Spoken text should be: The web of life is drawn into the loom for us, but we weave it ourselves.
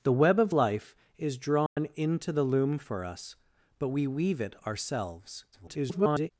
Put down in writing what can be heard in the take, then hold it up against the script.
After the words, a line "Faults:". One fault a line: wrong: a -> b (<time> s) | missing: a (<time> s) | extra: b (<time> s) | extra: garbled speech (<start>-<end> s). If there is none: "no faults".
The web of life is drawn into the loom for us, but we weave it ourselves. [garbled]
Faults:
extra: garbled speech (5.5-6.3 s)